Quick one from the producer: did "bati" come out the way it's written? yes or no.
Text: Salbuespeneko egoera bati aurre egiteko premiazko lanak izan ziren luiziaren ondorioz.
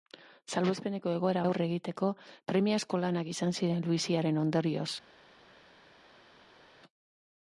no